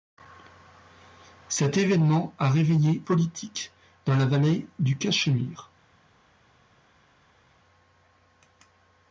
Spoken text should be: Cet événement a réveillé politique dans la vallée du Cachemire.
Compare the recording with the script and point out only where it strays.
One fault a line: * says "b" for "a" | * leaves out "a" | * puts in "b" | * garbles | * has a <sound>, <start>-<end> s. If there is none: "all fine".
all fine